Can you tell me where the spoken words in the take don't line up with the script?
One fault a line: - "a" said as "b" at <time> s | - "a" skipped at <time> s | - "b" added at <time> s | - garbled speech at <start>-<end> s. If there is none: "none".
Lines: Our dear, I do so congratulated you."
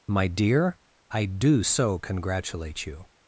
- "Our" said as "My" at 0.1 s
- "congratulated" said as "congratulate" at 2.0 s